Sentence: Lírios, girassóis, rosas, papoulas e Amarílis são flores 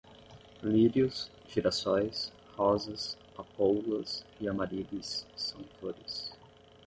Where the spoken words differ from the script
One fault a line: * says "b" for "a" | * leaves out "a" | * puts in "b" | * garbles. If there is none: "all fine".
all fine